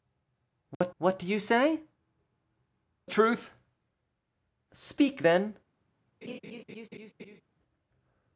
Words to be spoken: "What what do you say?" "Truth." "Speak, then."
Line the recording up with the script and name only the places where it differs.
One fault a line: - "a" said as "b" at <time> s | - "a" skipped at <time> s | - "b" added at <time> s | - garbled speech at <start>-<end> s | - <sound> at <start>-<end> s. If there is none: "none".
- dropout at 0.7-0.8 s
- laugh at 6.2-7.4 s